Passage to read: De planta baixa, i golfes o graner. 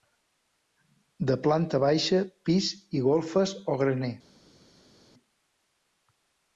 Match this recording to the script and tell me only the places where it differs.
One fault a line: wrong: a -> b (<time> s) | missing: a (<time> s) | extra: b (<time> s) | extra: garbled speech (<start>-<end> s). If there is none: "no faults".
extra: pis (2.5 s)